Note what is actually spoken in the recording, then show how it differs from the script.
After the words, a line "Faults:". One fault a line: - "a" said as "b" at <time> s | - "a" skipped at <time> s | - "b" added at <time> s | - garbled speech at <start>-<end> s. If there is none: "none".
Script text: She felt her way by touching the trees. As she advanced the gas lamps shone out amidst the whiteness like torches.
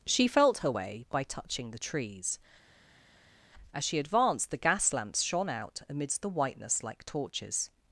She felt her way by touching the trees. As she advanced the gas lamps shone out amidst the whiteness like torches.
Faults:
none